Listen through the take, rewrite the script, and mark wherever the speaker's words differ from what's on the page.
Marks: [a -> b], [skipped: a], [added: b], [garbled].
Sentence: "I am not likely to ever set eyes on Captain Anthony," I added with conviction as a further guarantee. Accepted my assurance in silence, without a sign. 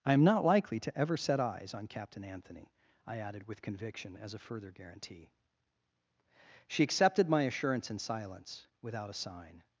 "I am not likely to ever set eyes on Captain Anthony," I added with conviction as a further guarantee. [added: She] Accepted my assurance in silence, without a sign.